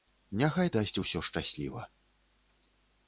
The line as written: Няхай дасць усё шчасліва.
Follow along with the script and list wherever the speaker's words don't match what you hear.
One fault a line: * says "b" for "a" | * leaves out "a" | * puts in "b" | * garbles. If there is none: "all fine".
all fine